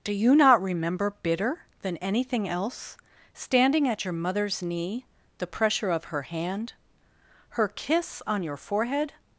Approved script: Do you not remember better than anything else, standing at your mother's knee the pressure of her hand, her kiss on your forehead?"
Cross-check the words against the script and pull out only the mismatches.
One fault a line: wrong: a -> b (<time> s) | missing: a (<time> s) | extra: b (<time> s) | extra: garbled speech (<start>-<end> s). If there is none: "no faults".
wrong: better -> bitter (1.2 s)